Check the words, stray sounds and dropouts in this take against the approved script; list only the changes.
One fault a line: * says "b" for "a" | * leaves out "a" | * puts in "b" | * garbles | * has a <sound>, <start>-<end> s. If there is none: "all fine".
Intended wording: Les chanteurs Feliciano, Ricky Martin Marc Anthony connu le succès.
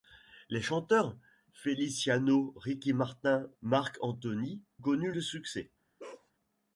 * has a bark, 6.0-6.3 s